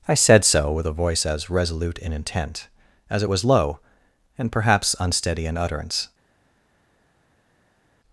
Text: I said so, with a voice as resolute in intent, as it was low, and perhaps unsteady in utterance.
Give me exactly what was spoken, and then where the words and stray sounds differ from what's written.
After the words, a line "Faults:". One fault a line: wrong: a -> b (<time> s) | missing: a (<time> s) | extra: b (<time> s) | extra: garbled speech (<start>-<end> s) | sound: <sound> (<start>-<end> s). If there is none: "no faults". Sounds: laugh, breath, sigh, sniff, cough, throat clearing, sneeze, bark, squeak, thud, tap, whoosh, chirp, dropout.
I said so, with a voice as resolute in intent, as it was low, and perhaps unsteady in utterance.
Faults:
no faults